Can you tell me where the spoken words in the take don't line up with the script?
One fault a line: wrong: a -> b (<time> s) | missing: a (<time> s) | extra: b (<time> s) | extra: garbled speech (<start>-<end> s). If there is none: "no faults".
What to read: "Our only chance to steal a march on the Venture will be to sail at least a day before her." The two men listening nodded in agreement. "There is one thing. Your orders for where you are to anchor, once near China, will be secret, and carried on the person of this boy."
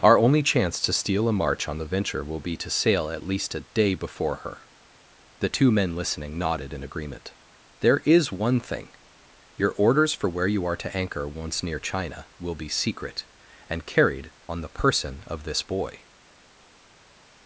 no faults